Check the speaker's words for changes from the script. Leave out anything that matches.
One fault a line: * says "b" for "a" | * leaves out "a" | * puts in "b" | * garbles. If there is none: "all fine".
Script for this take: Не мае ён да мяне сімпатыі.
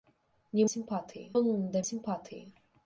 * says "сімпатыі" for "мае"
* leaves out "мяне"